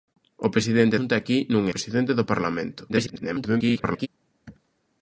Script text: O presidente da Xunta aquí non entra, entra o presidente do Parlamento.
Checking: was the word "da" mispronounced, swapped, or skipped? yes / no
yes